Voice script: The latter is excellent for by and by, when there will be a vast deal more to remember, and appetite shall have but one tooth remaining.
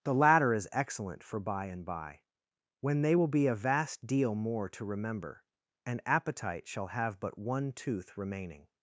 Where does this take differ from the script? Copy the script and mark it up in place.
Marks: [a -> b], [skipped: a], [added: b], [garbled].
The latter is excellent for by and by, when [there -> they] will be a vast deal more to remember, and appetite shall have but one tooth remaining.